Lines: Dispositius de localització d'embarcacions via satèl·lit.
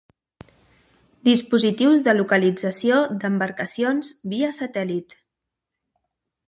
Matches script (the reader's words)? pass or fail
pass